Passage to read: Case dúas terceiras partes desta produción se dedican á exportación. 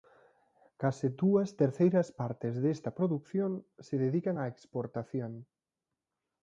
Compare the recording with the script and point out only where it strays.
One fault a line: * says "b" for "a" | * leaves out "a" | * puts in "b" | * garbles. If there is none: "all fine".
all fine